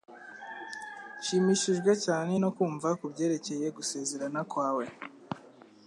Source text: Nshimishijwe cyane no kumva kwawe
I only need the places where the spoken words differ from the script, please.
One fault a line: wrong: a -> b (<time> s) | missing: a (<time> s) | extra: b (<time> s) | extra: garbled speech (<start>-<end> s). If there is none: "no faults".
extra: kubyerekeye gusezerana (3.0 s)